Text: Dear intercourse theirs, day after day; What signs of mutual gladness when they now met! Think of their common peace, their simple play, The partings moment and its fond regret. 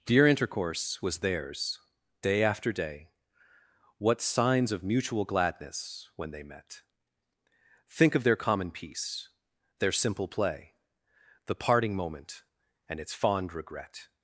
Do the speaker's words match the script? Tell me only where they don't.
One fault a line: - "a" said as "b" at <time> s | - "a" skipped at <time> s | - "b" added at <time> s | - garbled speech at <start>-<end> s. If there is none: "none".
- "was" added at 1.0 s
- "now" skipped at 6.4 s
- "partings" said as "parting" at 11.6 s